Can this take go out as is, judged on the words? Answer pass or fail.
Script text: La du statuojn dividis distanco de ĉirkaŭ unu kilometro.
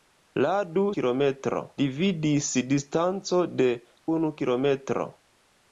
fail